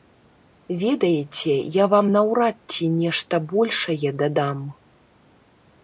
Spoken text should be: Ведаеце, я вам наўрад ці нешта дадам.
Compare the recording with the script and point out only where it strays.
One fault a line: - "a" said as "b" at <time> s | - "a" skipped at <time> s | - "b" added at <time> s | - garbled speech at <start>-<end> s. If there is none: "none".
- "большае" added at 3.5 s